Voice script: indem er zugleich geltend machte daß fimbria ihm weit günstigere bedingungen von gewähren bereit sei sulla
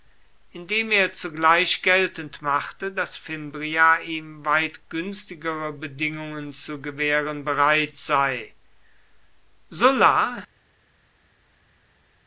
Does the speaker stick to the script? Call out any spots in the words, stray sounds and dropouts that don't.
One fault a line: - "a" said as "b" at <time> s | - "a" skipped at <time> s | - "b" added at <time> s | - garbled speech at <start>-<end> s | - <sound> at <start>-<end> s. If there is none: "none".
- "von" said as "zu" at 6.5 s